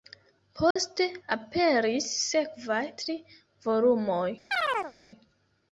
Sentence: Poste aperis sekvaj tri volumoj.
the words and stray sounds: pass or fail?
fail